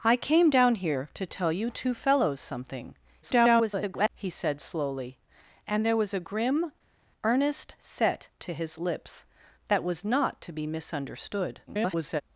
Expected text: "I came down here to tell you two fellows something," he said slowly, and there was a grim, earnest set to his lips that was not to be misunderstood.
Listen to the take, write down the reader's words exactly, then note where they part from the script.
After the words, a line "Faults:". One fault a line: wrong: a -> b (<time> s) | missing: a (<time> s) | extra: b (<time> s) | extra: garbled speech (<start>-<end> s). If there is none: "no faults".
"I came down here to tell you two fellows something," [garbled] he said slowly, and there was a grim, earnest set to his lips that was not to be misunderstood. [garbled]
Faults:
extra: garbled speech (3.2-4.1 s)
extra: garbled speech (11.7-12.2 s)